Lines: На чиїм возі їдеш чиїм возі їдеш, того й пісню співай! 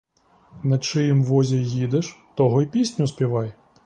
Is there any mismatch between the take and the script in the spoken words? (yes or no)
yes